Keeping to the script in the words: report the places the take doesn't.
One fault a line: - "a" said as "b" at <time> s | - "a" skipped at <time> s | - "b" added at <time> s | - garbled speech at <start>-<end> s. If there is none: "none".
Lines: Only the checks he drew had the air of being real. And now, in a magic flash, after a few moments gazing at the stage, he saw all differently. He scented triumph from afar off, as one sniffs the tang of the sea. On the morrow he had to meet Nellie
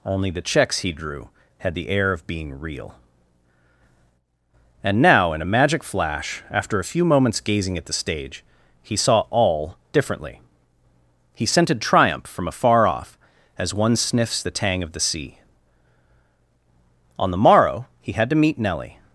none